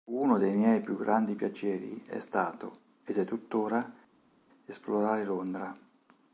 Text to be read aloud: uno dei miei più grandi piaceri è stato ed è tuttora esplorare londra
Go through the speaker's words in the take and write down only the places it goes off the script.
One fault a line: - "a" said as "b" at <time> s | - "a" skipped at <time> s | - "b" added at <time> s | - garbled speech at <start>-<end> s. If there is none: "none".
none